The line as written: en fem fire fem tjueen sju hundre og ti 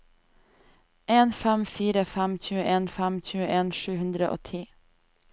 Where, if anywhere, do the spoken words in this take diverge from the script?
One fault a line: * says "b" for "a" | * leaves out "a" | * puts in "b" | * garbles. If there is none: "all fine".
* puts in "fem tjueen"